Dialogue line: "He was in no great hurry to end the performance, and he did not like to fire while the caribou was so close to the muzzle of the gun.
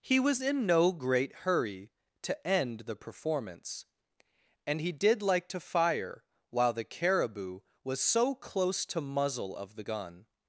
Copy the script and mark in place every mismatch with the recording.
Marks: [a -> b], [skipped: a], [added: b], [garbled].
"He was in no great hurry to end the performance, and he did [skipped: not] like to fire while the caribou was so close to [skipped: the] muzzle of the gun.